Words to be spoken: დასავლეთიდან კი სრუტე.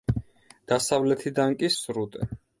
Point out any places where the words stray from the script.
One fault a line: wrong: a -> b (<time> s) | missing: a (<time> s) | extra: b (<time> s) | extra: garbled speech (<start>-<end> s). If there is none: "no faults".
no faults